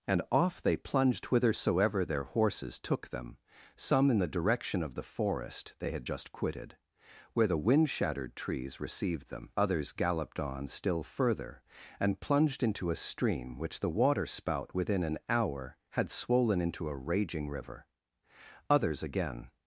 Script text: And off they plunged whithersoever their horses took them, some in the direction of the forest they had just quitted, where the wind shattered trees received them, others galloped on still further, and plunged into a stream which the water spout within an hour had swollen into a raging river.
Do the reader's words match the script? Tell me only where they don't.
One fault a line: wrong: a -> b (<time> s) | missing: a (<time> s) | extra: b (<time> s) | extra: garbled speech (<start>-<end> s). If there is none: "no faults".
extra: Others again (18.7 s)